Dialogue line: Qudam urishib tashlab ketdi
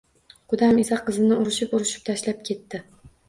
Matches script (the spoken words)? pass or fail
fail